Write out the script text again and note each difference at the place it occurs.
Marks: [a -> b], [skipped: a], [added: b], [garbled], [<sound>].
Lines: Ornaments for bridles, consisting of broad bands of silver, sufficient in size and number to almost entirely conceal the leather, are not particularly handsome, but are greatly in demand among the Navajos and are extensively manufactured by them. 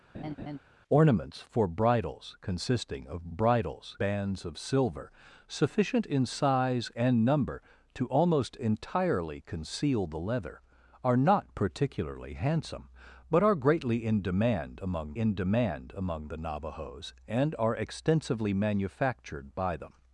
[laugh] Ornaments for bridles, consisting of [broad -> bridles] bands of silver, sufficient in size and number to almost entirely conceal the leather, are not particularly handsome, but are greatly in demand among [added: in demand among] the Navajos and are extensively manufactured by them.